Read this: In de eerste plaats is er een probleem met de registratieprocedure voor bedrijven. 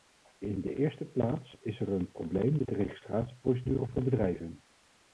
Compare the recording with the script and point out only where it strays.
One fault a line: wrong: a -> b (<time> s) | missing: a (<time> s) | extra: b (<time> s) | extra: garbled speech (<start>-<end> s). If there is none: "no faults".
no faults